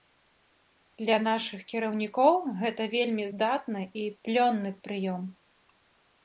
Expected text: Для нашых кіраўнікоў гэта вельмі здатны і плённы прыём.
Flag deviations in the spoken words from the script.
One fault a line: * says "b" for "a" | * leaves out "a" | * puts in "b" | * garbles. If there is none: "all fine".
all fine